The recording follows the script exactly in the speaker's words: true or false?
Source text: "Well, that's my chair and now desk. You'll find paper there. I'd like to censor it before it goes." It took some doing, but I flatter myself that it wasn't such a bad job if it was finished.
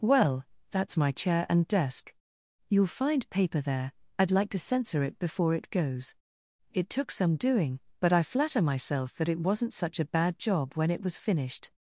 false